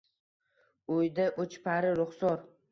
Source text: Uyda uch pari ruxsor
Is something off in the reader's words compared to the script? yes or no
no